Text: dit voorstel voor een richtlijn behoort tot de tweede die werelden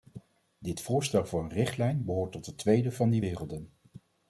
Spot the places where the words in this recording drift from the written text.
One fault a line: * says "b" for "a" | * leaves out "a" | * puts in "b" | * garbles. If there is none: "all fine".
* puts in "van"